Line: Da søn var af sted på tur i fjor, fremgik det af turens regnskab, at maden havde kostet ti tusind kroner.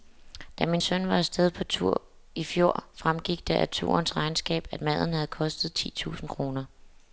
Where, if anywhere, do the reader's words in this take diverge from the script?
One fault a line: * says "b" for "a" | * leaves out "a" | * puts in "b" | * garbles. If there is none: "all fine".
* puts in "min"